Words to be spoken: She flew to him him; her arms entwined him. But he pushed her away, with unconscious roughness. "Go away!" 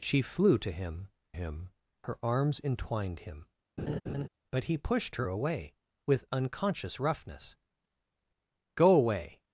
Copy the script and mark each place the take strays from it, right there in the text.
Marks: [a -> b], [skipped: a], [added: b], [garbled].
She flew to him him; her arms entwined him. But he pushed her away, with unconscious roughness. "Go away!"